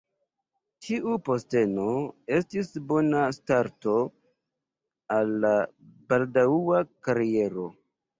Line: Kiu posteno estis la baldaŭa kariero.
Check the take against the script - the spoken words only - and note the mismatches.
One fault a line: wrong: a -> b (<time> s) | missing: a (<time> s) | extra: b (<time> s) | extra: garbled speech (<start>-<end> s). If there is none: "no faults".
wrong: Kiu -> Tiu (0.8 s)
extra: bona starto al (2.9 s)